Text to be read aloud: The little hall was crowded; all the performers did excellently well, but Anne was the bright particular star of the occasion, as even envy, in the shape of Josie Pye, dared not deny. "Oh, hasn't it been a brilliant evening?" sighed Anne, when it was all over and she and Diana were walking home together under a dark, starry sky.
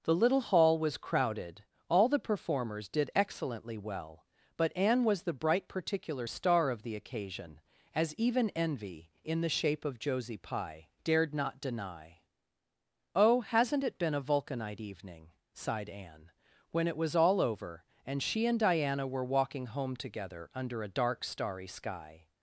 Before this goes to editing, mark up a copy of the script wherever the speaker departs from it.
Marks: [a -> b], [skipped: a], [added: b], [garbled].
The little hall was crowded; all the performers did excellently well, but Anne was the bright particular star of the occasion, as even envy, in the shape of Josie Pye, dared not deny. "Oh, hasn't it been a [brilliant -> vulcanite] evening?" sighed Anne, when it was all over and she and Diana were walking home together under a dark, starry sky.